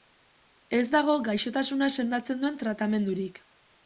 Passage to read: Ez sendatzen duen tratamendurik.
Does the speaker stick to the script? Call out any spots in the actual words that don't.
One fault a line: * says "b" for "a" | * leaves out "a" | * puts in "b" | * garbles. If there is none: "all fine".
* puts in "dago gaixotasuna"